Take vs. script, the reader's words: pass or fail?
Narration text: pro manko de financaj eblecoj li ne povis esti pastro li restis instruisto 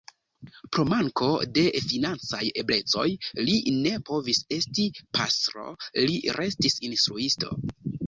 pass